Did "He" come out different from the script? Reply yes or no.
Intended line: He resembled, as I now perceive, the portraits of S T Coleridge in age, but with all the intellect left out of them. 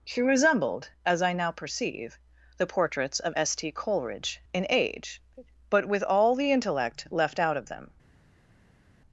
yes